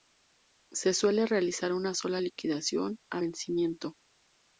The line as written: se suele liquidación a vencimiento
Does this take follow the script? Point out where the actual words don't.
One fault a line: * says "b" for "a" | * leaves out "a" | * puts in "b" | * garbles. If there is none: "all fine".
* puts in "realizar una sola"